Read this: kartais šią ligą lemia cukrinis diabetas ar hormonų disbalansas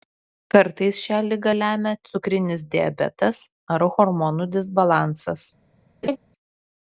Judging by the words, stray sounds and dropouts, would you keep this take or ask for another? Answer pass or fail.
fail